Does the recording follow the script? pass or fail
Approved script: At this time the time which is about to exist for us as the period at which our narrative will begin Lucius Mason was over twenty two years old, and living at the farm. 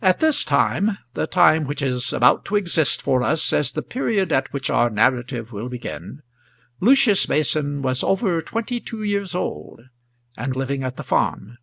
pass